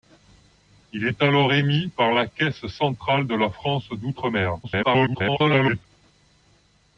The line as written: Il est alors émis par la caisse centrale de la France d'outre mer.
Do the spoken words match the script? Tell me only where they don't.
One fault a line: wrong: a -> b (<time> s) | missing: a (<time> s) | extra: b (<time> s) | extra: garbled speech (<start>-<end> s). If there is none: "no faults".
extra: garbled speech (4.6-5.8 s)